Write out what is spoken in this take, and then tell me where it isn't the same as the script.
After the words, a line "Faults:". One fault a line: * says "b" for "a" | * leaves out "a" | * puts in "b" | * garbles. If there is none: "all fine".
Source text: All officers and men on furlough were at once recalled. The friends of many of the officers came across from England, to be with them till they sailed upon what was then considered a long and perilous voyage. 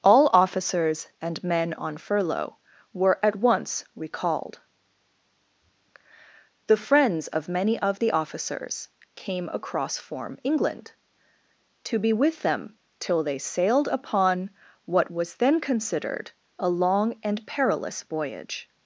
All officers and men on furlough were at once recalled. The friends of many of the officers came across form England, to be with them till they sailed upon what was then considered a long and perilous voyage.
Faults:
* says "form" for "from"